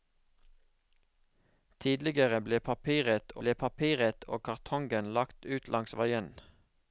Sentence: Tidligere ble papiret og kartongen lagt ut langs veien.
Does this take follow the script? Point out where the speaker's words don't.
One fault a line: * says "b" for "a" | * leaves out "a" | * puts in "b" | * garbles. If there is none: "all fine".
* puts in "ble papiret"